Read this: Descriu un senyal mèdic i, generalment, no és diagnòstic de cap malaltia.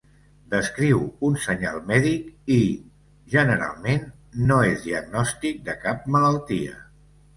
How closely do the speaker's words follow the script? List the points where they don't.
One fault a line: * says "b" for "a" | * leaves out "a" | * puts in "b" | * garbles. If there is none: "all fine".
all fine